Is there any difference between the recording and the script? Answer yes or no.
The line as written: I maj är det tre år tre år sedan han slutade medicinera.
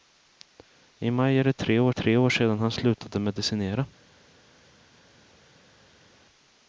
no